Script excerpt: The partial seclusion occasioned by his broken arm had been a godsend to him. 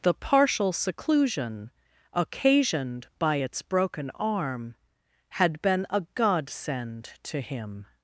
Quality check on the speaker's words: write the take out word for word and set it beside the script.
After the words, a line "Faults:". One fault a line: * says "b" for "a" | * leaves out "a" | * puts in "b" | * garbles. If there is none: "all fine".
The partial seclusion occasioned by its broken arm had been a godsend to him.
Faults:
* says "its" for "his"